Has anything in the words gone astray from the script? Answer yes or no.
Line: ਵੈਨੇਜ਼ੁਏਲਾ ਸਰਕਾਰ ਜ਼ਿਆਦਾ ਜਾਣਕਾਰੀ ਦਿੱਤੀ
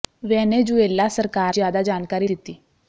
no